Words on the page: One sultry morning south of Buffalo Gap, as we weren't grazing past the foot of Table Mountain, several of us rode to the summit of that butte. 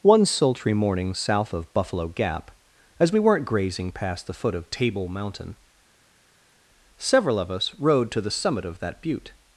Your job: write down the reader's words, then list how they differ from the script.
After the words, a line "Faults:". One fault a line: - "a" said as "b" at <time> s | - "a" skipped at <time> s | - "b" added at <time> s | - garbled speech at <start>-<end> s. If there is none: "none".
One sultry morning south of Buffalo Gap, as we weren't grazing past the foot of Table Mountain, several of us rode to the summit of that butte.
Faults:
none